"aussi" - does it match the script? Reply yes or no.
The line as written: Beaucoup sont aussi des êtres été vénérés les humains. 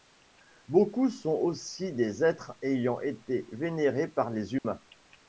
yes